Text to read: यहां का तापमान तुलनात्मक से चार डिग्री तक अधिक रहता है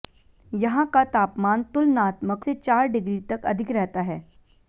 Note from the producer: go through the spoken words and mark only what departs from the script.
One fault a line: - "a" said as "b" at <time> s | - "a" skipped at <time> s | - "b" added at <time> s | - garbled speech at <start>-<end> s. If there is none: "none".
none